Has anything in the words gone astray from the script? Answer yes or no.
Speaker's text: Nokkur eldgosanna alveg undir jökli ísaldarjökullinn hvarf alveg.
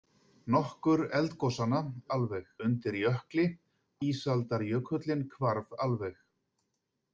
no